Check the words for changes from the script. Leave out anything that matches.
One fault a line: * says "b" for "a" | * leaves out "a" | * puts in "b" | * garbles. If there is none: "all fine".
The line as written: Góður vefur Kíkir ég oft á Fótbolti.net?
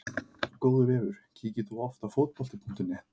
* says "þú" for "ég"